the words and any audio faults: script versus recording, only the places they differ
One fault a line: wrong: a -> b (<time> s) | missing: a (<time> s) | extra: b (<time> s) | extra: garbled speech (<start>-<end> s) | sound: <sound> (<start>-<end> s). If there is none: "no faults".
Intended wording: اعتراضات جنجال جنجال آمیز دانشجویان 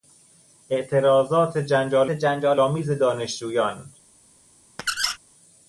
sound: squeak (4.8-5.2 s)